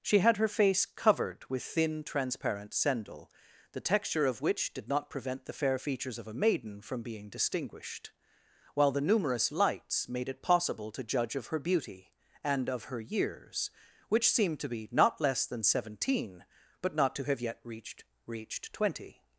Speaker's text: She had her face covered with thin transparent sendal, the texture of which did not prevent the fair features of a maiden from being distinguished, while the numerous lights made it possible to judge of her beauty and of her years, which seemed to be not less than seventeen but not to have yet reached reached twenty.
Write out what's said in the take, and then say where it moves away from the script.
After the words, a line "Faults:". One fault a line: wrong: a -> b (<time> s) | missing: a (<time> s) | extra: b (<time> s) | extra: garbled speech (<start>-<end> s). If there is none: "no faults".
She had her face covered with thin transparent sendal, the texture of which did not prevent the fair features of a maiden from being distinguished, while the numerous lights made it possible to judge of her beauty and of her years, which seemed to be not less than seventeen but not to have yet reached reached twenty.
Faults:
no faults